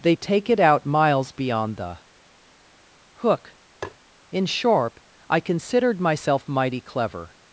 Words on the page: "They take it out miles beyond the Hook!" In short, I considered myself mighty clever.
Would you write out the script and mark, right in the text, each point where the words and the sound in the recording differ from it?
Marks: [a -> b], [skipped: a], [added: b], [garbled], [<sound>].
"They take it out miles beyond the Hook!" [tap] In [short, -> sharp] I considered myself mighty clever.